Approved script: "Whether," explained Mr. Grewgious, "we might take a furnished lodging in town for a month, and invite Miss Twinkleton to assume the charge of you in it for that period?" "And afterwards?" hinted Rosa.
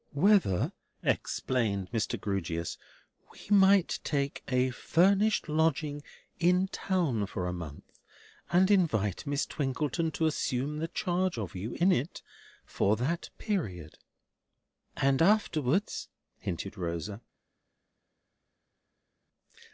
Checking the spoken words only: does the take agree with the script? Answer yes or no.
yes